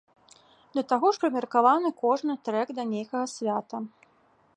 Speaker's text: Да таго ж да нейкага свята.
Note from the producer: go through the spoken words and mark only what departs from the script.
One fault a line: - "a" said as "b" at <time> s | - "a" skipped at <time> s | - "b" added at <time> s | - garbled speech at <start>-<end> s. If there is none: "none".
- "прымеркаваны кожны трэк" added at 1.2 s